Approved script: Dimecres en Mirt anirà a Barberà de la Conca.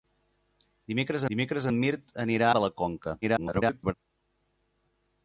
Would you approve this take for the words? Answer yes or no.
no